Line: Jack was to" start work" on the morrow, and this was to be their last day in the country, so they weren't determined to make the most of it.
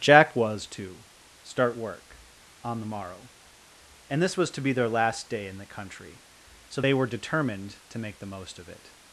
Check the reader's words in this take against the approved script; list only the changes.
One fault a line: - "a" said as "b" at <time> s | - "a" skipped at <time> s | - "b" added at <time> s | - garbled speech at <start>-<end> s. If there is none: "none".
- "weren't" said as "were" at 6.9 s